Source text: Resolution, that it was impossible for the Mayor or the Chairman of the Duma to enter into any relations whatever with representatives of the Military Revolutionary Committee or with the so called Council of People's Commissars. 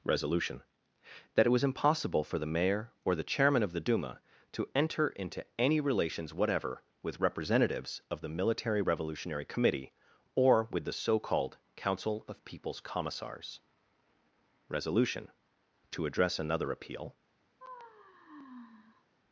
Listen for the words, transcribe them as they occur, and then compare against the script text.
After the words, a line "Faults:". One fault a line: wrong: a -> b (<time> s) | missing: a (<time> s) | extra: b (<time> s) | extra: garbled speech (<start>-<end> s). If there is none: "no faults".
Resolution, that it was impossible for the Mayor or the Chairman of the Duma to enter into any relations whatever with representatives of the Military Revolutionary Committee or with the so called Council of People's Commissars. Resolution, to address another appeal
Faults:
extra: Resolution to address another appeal (14.7 s)